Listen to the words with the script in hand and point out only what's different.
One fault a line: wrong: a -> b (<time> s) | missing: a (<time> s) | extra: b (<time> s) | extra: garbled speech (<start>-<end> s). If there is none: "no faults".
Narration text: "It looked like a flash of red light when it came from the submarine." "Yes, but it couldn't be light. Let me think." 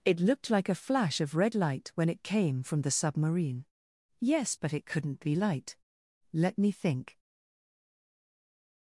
no faults